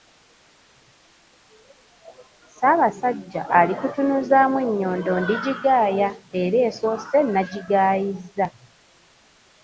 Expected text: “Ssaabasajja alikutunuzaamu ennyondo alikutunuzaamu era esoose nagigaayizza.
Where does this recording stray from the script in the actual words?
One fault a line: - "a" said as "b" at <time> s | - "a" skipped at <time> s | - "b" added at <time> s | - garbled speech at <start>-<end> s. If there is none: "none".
- "alikutunuzaamu" said as "ndigigaaya" at 5.2 s